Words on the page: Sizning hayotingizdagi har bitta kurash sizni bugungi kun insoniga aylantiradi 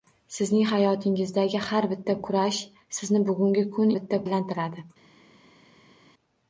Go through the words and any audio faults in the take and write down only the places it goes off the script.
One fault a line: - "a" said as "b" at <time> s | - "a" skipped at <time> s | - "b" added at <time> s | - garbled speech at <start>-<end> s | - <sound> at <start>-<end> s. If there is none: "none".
- "insoniga" said as "bitta" at 3.9 s